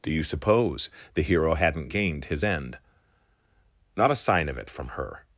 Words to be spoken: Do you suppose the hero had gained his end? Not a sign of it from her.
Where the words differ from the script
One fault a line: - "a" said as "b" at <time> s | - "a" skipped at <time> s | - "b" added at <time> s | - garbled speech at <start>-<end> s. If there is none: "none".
- "had" said as "hadn't" at 1.5 s